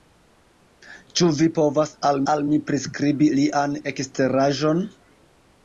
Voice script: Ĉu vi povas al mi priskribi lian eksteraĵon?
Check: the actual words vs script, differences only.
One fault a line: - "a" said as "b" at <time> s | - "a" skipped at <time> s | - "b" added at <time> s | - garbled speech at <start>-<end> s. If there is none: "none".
- "al" added at 2.3 s